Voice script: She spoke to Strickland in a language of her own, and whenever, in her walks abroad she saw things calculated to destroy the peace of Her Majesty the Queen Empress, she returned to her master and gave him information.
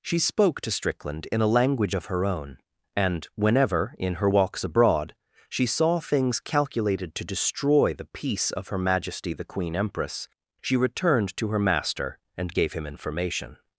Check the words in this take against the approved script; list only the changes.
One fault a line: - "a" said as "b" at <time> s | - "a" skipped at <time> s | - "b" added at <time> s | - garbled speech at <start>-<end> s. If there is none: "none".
none